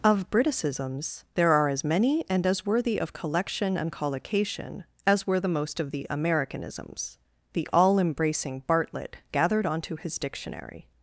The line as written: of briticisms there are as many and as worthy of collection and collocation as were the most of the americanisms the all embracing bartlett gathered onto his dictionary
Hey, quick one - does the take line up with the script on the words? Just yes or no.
yes